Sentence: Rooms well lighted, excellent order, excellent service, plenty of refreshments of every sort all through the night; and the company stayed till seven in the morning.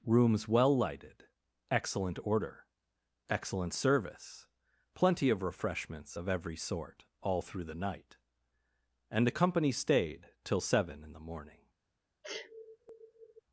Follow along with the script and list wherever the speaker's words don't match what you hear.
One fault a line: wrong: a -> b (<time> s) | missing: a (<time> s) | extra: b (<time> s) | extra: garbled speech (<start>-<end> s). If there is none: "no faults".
no faults